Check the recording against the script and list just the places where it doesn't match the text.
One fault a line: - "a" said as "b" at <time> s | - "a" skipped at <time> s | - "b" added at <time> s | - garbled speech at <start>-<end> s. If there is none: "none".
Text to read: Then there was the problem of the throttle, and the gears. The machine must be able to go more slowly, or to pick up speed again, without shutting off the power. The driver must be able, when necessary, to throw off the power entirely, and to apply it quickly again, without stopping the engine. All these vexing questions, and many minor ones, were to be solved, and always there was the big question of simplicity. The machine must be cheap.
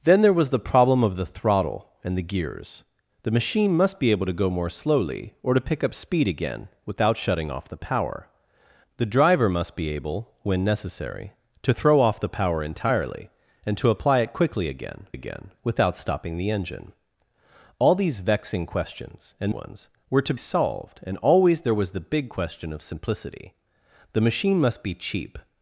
- "again" added at 15.1 s
- "many minor" skipped at 19.5 s
- "be" skipped at 20.3 s